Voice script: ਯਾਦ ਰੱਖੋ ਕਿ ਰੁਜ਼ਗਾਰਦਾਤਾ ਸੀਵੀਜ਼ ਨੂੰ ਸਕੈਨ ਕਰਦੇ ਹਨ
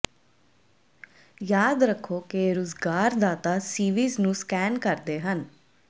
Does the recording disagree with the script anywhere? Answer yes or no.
no